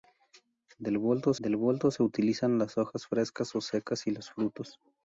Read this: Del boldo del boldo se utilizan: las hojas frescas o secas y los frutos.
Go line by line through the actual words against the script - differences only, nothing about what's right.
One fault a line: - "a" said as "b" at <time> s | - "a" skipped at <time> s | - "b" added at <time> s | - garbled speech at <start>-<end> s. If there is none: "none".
none